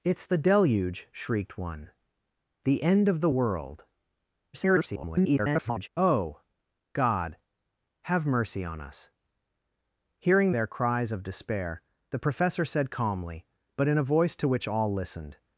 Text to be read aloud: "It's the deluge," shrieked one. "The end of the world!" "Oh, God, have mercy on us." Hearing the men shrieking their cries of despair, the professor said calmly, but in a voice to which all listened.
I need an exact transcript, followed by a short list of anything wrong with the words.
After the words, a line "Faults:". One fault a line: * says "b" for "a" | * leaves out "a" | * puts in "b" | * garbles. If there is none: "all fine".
"It's the deluge," shrieked one. "The end of the world!" [garbled] "Oh, God, have mercy on us." Hearing their cries of despair, the professor said calmly, but in a voice to which all listened.
Faults:
* garbles
* leaves out "the men shrieking"